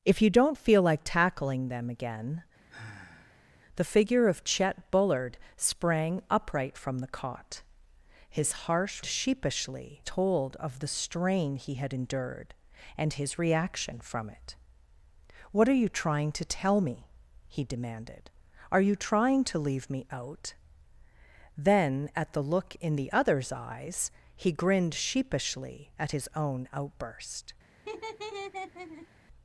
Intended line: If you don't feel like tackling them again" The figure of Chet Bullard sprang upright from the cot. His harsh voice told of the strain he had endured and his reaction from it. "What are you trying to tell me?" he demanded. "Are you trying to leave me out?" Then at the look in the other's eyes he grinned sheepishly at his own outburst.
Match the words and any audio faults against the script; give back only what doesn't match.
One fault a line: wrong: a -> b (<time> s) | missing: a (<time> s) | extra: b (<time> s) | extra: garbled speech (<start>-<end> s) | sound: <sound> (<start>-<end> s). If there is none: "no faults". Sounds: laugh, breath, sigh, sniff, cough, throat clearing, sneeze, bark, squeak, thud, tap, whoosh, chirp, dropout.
sound: sigh (2.7-3.5 s)
wrong: voice -> sheepishly (9.0 s)
sound: laugh (27.8-29.1 s)